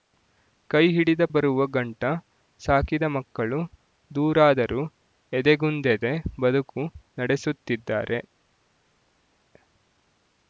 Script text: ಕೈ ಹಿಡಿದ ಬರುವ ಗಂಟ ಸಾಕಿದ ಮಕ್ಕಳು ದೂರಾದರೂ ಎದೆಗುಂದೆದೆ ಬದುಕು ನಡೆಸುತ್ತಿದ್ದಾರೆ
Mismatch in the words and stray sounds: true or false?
false